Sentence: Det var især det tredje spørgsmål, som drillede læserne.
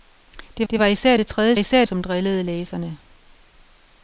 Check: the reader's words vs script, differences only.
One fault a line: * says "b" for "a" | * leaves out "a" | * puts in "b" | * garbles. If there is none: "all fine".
* puts in "det"
* says "især" for "spørgsmål"